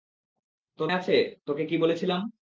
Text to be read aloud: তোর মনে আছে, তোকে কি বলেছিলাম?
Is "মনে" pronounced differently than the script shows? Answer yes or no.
yes